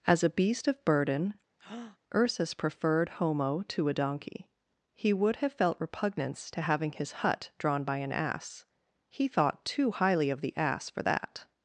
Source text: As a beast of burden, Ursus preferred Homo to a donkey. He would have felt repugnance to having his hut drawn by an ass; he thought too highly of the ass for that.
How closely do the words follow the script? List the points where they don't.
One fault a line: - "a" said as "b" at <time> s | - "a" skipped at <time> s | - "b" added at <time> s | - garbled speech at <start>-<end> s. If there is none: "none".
none